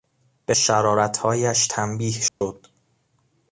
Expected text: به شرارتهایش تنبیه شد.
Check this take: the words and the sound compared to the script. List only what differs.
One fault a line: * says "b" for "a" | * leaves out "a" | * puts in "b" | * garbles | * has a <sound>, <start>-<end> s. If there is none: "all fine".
* has a dropout, 2.3-2.4 s